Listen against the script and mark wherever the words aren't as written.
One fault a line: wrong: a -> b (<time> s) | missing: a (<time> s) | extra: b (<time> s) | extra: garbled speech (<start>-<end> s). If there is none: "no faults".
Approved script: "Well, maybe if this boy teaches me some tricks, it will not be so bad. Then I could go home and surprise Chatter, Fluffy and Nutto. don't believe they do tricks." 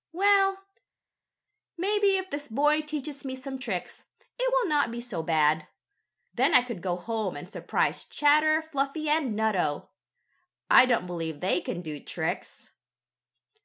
extra: I (10.7 s)
extra: can (11.6 s)